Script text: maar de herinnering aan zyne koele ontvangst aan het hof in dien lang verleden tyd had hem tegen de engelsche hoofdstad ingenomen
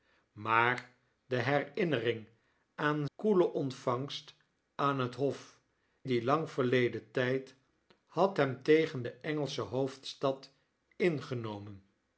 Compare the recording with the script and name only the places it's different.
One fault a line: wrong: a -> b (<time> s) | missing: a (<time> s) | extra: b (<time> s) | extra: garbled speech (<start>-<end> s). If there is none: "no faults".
missing: zyne (3.1 s)
missing: in (5.6 s)